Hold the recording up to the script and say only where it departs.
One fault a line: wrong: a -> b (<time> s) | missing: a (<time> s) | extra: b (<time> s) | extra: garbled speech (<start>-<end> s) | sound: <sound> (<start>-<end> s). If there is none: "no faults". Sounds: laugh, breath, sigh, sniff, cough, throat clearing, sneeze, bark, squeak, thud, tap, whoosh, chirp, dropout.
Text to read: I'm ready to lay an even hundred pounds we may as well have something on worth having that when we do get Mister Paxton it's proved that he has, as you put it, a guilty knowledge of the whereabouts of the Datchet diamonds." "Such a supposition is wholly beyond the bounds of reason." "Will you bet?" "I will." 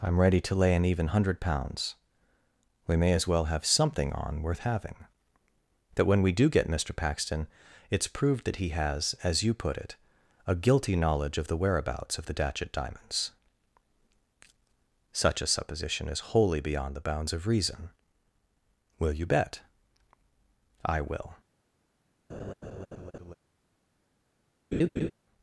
sound: laugh (22.3-23.3 s)
sound: laugh (24.7-25.1 s)